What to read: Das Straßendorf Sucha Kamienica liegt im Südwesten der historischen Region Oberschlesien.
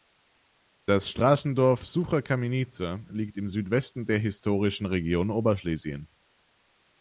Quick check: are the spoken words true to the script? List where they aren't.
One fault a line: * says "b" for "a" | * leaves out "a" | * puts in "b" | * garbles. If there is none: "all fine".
all fine